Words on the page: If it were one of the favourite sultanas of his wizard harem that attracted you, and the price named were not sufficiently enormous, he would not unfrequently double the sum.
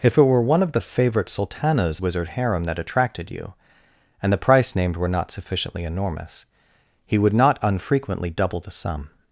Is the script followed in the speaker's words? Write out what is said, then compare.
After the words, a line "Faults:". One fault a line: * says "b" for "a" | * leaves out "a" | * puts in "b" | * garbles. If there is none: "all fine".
If it were one of the favourite sultanas wizard harem that attracted you, and the price named were not sufficiently enormous, he would not unfrequently double the sum.
Faults:
* leaves out "of his"